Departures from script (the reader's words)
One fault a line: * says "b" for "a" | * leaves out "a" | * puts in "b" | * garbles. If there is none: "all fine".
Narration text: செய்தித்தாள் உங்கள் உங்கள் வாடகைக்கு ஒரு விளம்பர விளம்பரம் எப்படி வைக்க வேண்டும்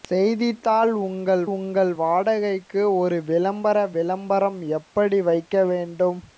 all fine